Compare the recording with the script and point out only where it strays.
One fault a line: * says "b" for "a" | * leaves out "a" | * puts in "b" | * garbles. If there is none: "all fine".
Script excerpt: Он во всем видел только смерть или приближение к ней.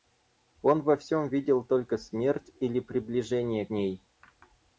* leaves out "к"